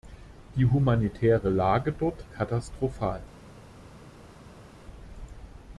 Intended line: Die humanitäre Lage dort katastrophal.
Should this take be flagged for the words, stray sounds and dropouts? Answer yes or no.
no